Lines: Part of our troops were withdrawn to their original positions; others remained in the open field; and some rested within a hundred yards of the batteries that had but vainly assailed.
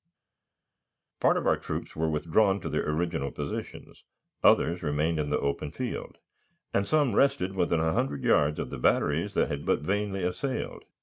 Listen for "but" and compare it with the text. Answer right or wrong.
right